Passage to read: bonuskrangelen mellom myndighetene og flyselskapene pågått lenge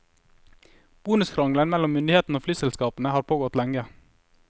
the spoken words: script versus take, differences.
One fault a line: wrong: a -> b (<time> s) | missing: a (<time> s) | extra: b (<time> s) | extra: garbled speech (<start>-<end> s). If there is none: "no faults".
extra: har (3.1 s)